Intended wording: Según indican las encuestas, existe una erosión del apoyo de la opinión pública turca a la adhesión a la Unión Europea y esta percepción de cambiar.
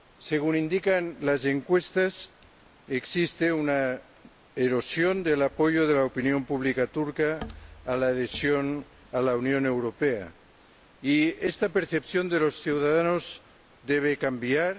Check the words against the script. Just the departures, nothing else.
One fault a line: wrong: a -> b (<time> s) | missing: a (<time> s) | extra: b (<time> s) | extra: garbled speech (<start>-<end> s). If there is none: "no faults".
extra: los ciudadanos debe (12.4 s)